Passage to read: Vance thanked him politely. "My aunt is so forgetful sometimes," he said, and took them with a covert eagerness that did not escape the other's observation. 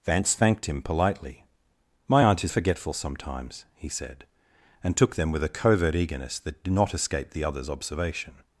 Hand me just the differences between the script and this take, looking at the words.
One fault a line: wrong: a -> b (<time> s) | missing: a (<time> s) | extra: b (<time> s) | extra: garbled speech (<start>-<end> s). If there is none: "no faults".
missing: so (2.5 s)